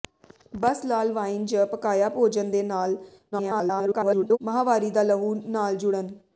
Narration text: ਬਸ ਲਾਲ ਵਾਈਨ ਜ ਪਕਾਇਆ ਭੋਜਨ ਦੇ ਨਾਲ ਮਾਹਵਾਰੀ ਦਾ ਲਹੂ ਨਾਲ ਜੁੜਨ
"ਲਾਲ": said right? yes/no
yes